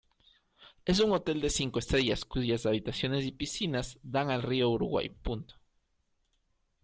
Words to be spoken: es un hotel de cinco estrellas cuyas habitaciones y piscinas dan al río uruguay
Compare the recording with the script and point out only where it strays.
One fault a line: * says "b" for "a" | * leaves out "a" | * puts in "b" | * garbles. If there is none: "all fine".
all fine